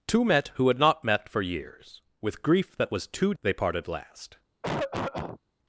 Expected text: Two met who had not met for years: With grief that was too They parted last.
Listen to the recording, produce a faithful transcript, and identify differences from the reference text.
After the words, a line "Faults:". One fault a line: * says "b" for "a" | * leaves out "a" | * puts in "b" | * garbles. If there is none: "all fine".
Two met who had not met for years: With grief that was too They parted last.
Faults:
all fine